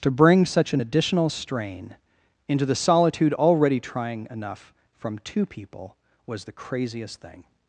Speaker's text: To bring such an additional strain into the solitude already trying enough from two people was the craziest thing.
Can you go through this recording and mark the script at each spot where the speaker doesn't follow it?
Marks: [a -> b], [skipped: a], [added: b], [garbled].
To bring such an additional strain into the solitude already trying enough from two people was the craziest thing.